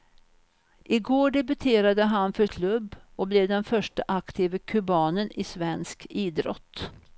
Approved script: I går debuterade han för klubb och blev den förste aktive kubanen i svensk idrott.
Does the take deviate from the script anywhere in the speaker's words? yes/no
no